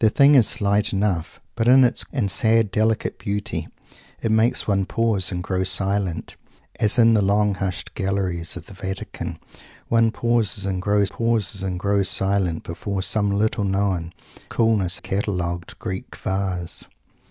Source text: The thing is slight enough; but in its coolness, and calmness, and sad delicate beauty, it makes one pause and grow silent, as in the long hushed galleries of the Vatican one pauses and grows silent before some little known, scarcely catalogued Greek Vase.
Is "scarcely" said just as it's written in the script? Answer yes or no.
no